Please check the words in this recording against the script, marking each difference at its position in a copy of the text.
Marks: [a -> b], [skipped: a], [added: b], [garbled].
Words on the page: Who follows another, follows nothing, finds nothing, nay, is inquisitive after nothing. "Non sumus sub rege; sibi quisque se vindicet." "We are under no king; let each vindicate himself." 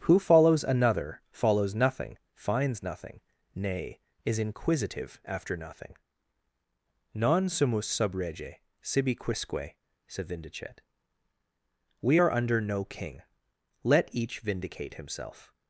Who follows another, follows nothing, finds nothing, nay, is inquisitive after nothing. "Non sumus sub rege; sibi quisque [se -> said] vindicet." "We are under no king; let each vindicate himself."